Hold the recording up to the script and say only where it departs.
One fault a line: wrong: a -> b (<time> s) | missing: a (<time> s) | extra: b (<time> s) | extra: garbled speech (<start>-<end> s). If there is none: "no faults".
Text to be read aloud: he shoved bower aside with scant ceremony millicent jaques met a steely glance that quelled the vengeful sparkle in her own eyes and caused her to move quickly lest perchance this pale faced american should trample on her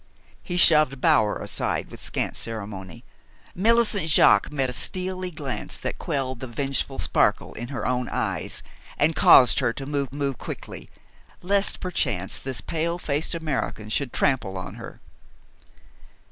extra: move (10.1 s)